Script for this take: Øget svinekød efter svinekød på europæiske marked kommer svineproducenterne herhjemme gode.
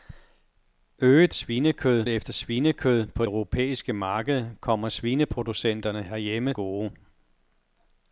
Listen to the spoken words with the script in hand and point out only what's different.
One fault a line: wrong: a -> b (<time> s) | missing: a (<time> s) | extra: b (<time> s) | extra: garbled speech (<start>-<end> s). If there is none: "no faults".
no faults